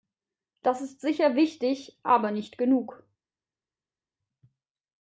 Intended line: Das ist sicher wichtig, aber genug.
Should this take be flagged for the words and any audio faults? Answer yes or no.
yes